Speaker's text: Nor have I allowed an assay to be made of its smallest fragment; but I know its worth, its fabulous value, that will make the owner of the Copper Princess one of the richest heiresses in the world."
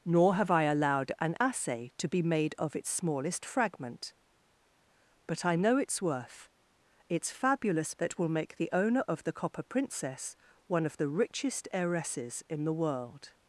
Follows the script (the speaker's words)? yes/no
no